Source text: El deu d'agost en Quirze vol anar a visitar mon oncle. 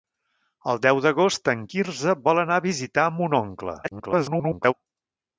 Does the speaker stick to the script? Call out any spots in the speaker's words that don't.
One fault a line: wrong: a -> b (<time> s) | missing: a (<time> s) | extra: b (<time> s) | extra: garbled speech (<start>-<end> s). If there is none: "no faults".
extra: garbled speech (3.8-4.7 s)